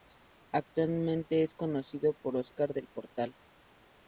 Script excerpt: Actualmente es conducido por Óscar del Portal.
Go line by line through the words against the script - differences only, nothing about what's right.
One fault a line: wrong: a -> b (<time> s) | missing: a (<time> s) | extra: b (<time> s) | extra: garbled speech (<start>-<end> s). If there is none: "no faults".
no faults